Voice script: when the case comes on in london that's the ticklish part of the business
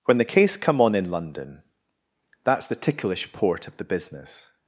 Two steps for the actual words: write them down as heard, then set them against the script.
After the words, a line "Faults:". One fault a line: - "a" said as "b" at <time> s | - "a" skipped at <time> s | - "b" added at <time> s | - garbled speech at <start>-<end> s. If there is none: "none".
when the case come on in london that's the ticklish port of the business
Faults:
- "comes" said as "come" at 0.6 s
- "part" said as "port" at 3.3 s